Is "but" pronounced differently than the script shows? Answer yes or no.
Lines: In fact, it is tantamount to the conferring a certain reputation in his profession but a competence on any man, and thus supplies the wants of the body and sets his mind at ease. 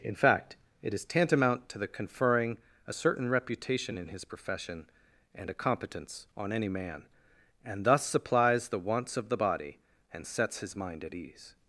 yes